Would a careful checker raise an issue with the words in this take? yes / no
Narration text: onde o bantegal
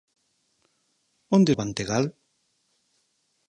no